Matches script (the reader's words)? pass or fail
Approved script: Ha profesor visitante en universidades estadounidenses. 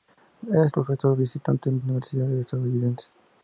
pass